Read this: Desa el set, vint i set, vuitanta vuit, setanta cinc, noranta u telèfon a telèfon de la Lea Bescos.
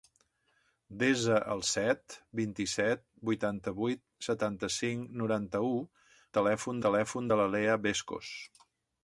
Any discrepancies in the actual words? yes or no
no